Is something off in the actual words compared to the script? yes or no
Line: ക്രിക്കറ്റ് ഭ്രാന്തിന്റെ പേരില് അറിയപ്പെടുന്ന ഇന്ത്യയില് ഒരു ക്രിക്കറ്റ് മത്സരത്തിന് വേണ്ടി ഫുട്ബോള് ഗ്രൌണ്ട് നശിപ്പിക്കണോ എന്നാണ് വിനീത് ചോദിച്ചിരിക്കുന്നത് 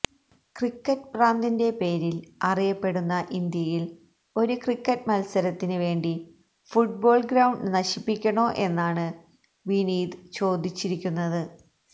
no